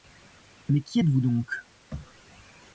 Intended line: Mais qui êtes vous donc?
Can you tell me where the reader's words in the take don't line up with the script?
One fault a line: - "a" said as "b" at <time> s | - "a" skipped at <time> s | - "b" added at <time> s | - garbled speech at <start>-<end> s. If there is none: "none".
none